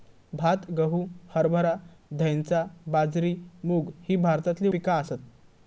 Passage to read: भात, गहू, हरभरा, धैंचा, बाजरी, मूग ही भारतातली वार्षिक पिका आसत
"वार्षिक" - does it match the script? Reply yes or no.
no